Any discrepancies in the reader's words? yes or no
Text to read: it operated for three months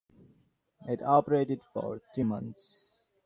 no